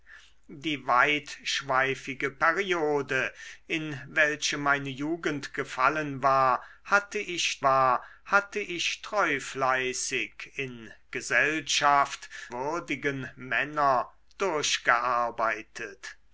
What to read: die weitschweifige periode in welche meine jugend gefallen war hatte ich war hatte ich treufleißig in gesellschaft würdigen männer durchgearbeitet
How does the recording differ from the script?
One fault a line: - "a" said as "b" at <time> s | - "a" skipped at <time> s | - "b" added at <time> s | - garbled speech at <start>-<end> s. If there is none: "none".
none